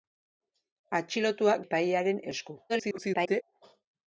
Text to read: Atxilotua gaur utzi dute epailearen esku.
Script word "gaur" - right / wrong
wrong